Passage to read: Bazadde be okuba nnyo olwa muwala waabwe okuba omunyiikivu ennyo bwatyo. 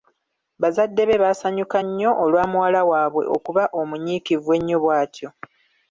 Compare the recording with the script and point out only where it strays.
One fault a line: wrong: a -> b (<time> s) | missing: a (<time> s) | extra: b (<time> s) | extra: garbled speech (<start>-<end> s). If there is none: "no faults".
wrong: okuba -> baasanyuka (1.2 s)